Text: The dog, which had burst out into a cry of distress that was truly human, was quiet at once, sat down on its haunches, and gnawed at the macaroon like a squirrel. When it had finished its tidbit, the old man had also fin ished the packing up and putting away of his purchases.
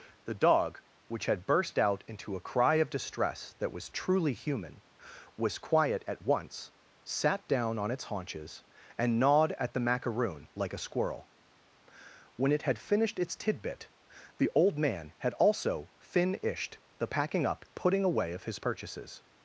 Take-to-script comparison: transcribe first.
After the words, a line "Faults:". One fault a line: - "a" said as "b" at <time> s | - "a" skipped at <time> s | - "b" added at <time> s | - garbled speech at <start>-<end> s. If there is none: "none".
The dog, which had burst out into a cry of distress that was truly human, was quiet at once, sat down on its haunches, and gnawed at the macaroon like a squirrel. When it had finished its tidbit, the old man had also fin ished the packing up putting away of his purchases.
Faults:
- "and" skipped at 17.6 s